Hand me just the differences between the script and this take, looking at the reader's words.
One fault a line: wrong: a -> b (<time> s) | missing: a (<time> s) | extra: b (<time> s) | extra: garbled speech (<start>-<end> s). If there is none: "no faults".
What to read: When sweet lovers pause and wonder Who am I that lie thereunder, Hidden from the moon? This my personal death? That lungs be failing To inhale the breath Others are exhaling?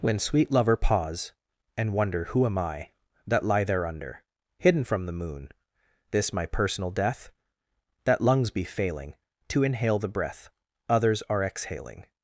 wrong: lovers -> lover (0.5 s)